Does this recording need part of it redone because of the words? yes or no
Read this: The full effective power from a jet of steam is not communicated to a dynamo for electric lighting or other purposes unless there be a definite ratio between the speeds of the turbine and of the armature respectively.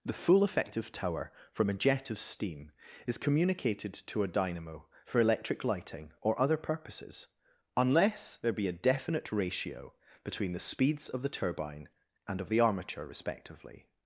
yes